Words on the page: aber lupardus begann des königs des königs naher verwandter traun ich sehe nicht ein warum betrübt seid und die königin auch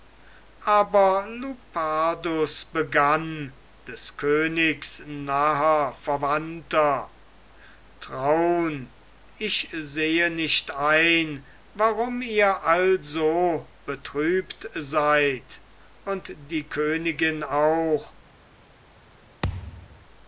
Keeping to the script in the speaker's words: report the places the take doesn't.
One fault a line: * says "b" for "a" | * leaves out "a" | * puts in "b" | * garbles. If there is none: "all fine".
* leaves out "des königs"
* puts in "ihr also"